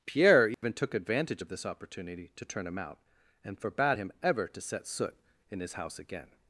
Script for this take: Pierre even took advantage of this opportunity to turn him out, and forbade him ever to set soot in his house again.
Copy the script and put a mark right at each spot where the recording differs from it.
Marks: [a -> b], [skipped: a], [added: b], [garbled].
Pierre even took advantage of this opportunity to turn him out, and forbade him ever to set soot in his house again.